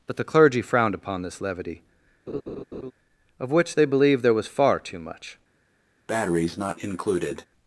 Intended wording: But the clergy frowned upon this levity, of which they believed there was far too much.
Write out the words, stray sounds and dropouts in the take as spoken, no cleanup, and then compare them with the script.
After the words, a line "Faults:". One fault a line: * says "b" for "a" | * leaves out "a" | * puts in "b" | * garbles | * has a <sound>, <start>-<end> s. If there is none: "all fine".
But the clergy frowned upon this levity, of which they believed there was far too much.
Faults:
* has a laugh, 2.3-2.9 s
* has a breath, 6.1-7.5 s